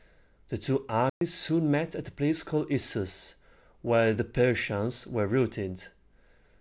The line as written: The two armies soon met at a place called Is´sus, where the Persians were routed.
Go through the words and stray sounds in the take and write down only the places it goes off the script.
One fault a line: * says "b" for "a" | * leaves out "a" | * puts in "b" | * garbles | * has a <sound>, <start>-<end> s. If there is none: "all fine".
* has a dropout, 1.1-1.2 s